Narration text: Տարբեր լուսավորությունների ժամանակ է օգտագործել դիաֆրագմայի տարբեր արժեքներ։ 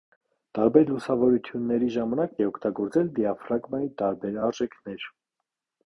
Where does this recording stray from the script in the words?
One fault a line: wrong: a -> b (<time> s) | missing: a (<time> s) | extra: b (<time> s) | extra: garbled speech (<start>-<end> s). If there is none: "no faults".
no faults